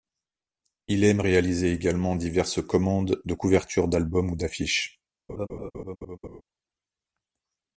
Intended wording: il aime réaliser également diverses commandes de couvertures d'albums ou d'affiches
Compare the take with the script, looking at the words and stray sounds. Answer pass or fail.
fail